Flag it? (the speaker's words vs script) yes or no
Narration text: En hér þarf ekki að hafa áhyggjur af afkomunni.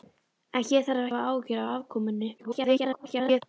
yes